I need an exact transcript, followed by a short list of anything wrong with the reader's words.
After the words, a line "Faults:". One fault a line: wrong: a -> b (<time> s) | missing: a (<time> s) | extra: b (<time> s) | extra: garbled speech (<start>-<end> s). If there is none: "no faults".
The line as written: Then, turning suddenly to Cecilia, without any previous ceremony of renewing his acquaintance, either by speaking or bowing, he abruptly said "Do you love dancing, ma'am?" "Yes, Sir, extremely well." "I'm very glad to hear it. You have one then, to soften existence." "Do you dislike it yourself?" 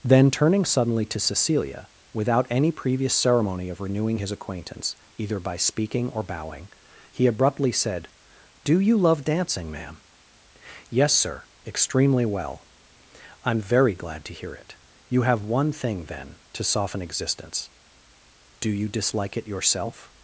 Then, turning suddenly to Cecilia, without any previous ceremony of renewing his acquaintance, either by speaking or bowing, he abruptly said "Do you love dancing, ma'am?" "Yes, Sir, extremely well." "I'm very glad to hear it. You have one thing, then, to soften existence." "Do you dislike it yourself?"
Faults:
extra: thing (15.7 s)